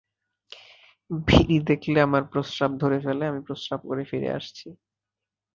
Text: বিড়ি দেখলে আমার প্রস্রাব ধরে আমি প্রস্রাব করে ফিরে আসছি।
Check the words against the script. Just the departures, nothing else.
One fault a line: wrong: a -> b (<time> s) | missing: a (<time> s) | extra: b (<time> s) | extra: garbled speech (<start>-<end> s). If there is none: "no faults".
extra: ফেলে (3.0 s)